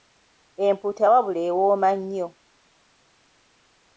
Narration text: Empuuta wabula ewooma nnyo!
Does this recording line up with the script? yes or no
yes